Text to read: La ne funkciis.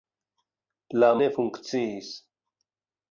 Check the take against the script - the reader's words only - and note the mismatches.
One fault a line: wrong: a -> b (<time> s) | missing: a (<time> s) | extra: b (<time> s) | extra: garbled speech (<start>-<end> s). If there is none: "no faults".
no faults